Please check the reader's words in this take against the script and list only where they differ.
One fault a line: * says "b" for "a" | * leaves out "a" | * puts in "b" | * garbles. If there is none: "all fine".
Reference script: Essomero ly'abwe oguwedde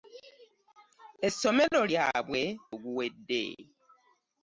all fine